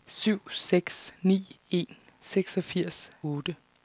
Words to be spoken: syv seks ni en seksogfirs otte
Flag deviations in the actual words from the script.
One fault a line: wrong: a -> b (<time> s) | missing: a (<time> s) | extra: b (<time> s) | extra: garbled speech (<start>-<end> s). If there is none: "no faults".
no faults